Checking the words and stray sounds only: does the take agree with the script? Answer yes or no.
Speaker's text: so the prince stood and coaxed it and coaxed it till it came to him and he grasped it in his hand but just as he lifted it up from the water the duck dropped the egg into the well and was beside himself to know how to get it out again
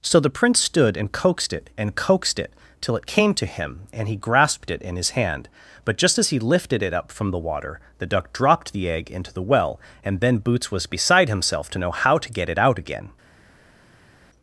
no